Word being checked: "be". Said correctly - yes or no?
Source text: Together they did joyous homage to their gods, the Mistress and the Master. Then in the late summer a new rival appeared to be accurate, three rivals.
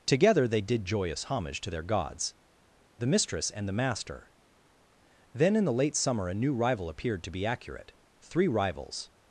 yes